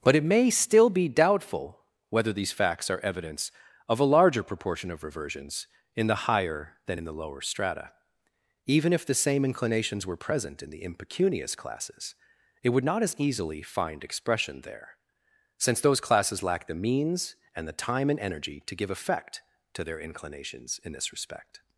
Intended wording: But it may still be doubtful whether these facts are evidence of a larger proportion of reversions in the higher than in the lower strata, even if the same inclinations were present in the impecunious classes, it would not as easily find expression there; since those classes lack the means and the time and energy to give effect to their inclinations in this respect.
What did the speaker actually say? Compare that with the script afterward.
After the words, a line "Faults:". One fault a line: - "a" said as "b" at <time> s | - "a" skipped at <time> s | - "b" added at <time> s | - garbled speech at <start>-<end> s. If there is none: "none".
But it may still be doubtful whether these facts are evidence of a larger proportion of reversions in the higher than in the lower strata, even if the same inclinations were present in the impecunious classes, it would not as easily find expression there; since those classes lack the means and the time and energy to give effect to their inclinations in this respect.
Faults:
none